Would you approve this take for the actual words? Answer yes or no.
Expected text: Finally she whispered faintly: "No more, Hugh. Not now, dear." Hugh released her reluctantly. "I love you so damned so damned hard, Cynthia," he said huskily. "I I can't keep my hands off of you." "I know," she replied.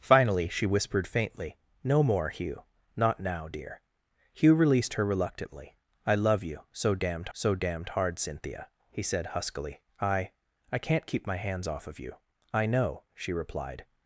yes